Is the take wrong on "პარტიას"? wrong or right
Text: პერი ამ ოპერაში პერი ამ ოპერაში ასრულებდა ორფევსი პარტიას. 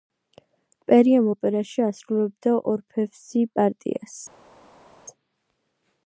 right